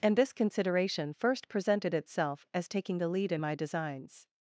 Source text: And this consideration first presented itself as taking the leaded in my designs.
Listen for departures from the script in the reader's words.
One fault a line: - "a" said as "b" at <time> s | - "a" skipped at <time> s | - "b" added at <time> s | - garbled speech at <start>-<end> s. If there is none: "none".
- "leaded" said as "lead" at 3.1 s